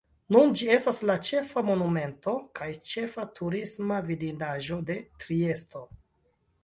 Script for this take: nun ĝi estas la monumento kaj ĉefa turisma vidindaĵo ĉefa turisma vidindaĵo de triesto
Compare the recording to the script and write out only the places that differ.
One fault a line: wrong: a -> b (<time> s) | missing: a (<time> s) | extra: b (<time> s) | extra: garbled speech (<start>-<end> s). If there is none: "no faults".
extra: ĉefa (1.3 s)
missing: ĉefa turisma vidindaĵo (4.8 s)